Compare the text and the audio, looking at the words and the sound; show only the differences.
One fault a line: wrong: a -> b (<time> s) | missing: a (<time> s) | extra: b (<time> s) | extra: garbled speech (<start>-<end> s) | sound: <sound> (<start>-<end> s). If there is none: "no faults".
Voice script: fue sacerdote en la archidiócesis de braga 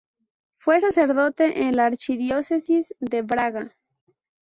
no faults